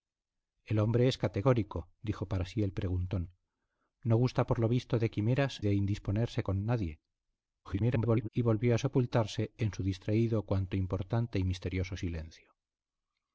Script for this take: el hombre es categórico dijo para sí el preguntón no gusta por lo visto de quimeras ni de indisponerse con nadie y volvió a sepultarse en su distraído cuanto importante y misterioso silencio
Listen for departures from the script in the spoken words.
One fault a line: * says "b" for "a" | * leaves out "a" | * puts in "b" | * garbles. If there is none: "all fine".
* leaves out "ni"
* garbles